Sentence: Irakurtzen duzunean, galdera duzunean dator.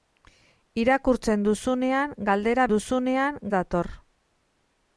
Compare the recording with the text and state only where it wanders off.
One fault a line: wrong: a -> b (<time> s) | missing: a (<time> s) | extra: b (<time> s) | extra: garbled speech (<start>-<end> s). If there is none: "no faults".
no faults